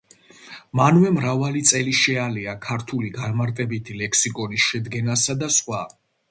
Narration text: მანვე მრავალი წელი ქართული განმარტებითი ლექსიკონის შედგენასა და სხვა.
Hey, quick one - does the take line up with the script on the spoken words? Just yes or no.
no